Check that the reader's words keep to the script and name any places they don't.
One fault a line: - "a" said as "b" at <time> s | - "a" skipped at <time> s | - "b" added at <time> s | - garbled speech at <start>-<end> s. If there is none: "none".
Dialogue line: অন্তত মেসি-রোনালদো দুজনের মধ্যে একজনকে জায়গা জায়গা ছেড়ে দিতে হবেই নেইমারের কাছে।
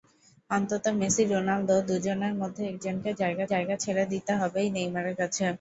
none